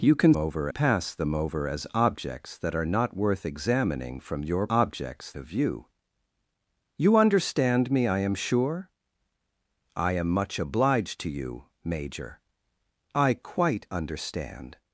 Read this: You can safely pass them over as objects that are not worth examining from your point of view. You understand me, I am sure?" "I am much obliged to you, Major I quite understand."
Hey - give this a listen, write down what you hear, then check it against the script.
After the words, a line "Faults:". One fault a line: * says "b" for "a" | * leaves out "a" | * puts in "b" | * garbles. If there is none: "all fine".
You can over pass them over as objects that are not worth examining from your objects of view. You understand me, I am sure?" "I am much obliged to you, Major I quite understand."
Faults:
* says "over" for "safely"
* says "objects" for "point"